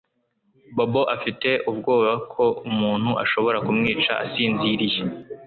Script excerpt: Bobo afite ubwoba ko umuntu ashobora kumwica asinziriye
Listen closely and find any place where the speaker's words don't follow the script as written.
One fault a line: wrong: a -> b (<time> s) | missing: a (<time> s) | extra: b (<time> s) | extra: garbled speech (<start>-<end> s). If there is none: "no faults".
no faults